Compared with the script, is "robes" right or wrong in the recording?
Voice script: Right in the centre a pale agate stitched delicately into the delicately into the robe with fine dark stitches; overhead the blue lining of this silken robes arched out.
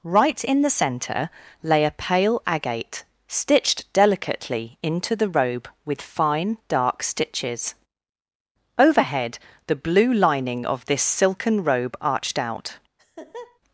wrong